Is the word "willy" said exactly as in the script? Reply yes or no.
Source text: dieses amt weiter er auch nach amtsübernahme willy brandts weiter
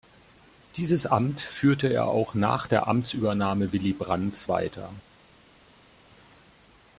yes